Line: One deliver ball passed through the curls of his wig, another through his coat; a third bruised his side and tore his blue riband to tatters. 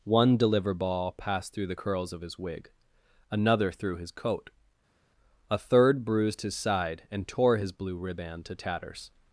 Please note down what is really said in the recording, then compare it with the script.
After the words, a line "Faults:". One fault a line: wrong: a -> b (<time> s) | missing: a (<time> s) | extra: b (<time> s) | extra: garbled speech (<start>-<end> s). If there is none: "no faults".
One deliver ball passed through the curls of his wig, another through his coat; a third bruised his side and tore his blue riband to tatters.
Faults:
no faults